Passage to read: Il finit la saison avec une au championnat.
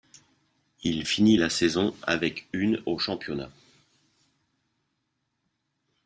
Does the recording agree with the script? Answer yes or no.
yes